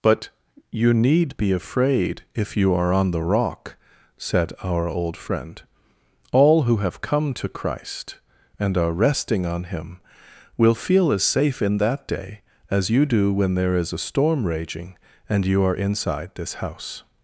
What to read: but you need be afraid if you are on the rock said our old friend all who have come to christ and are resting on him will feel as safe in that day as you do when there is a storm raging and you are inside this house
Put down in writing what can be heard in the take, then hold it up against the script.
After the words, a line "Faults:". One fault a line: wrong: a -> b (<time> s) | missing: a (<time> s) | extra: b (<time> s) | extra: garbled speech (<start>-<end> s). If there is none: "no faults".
but you need be afraid if you are on the rock said our old friend all who have come to christ and are resting on him will feel as safe in that day as you do when there is a storm raging and you are inside this house
Faults:
no faults